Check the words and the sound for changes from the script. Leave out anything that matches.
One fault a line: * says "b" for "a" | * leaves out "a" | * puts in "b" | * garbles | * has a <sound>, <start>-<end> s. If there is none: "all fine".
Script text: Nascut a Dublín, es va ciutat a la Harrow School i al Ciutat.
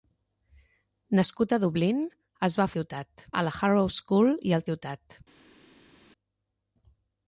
all fine